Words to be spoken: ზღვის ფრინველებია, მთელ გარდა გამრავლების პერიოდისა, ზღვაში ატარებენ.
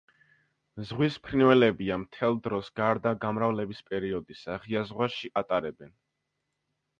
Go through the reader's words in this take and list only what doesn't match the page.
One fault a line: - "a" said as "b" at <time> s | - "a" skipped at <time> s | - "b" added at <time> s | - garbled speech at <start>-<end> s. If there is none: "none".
- "დროს" added at 2.5 s
- "ღია" added at 4.7 s